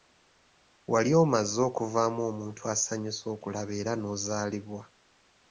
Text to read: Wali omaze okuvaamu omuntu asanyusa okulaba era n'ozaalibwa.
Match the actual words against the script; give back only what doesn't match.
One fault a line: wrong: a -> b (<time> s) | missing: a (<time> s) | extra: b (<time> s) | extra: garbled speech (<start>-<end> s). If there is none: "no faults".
no faults